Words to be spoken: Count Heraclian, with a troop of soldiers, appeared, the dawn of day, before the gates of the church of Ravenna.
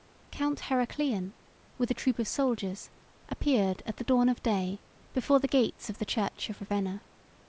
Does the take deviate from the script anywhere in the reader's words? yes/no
yes